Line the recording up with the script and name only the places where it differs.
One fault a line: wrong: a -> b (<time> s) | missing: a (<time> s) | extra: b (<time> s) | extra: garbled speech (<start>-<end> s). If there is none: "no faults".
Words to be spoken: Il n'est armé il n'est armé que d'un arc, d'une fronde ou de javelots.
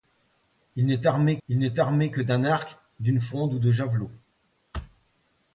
no faults